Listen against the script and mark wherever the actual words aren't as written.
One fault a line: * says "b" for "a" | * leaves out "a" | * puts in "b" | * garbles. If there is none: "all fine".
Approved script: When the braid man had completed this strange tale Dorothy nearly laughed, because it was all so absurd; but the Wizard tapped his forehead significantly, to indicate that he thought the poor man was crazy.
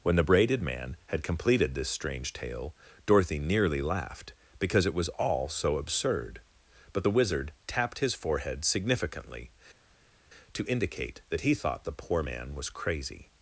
* says "braided" for "braid"